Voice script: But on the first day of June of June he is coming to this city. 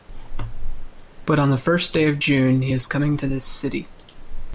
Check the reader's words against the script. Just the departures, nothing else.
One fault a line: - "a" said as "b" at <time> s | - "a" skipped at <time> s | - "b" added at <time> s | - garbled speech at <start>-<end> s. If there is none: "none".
- "of June" skipped at 2.6 s